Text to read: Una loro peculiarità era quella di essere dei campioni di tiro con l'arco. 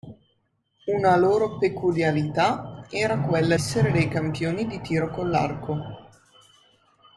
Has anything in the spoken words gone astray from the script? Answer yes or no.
yes